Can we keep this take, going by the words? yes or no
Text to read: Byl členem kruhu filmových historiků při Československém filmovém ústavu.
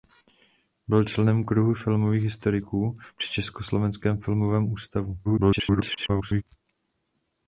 no